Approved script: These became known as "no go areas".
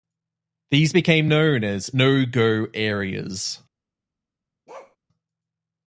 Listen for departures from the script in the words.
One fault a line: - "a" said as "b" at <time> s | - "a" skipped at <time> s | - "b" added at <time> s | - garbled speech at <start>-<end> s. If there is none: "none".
none